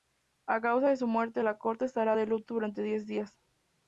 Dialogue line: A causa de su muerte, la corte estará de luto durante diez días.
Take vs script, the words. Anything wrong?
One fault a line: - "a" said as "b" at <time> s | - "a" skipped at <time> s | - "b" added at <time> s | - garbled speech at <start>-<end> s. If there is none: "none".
none